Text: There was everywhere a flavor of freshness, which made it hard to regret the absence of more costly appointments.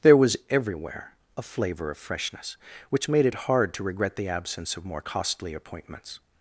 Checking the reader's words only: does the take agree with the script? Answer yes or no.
yes